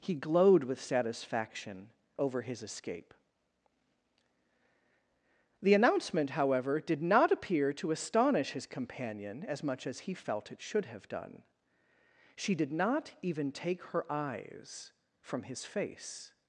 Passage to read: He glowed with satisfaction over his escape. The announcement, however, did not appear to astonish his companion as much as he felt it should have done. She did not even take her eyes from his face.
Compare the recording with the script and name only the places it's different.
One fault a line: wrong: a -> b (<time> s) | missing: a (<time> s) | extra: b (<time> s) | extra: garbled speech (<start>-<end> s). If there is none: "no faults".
no faults